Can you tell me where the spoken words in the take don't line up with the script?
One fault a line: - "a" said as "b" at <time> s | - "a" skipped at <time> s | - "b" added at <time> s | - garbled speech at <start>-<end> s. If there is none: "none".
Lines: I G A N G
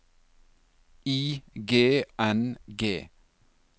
- "A" skipped at 2.0 s